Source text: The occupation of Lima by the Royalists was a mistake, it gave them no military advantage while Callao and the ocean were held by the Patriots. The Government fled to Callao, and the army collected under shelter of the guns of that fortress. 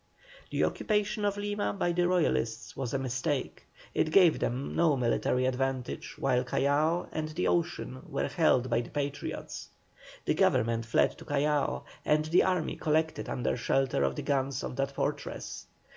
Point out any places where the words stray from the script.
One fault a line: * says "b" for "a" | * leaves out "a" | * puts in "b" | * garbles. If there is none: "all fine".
all fine